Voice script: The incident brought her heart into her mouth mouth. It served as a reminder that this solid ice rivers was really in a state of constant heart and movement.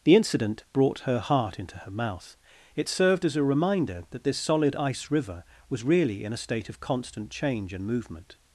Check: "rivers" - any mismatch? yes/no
yes